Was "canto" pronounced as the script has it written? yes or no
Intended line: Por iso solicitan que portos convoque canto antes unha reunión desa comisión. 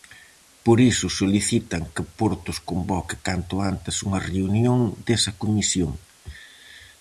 yes